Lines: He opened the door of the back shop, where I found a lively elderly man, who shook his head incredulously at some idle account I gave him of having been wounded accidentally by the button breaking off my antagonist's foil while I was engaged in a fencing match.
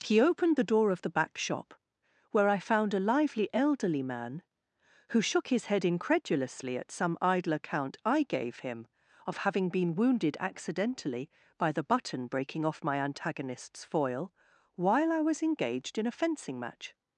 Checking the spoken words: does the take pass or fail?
pass